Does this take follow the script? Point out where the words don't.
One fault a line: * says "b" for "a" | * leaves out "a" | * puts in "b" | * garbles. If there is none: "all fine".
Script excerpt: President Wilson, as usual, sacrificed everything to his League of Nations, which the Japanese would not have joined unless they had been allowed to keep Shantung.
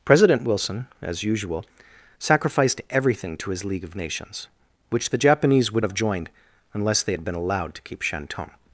* leaves out "not"